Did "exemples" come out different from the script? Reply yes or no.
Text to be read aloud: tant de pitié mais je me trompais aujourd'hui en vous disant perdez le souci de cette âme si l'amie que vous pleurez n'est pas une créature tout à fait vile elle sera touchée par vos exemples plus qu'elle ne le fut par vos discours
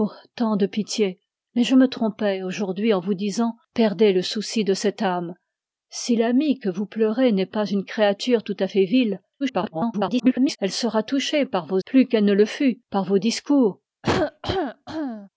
yes